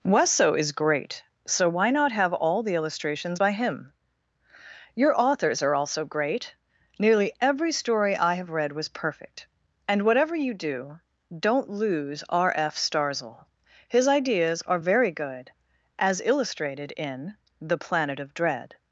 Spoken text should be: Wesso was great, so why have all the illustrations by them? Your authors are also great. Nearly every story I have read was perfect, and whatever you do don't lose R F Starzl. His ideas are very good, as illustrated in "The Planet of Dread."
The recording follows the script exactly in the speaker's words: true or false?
false